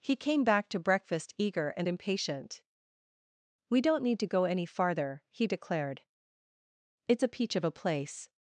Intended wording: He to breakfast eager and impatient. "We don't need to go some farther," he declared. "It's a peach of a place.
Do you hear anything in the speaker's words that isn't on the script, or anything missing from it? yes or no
yes